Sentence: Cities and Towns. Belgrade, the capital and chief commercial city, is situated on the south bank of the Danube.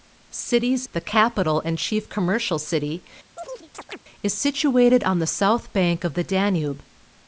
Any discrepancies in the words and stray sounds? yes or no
yes